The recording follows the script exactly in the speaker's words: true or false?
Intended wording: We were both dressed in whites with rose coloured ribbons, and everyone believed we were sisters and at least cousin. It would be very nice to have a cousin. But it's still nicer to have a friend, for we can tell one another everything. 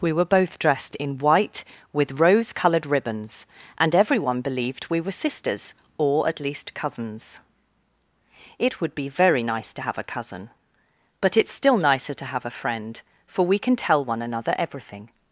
false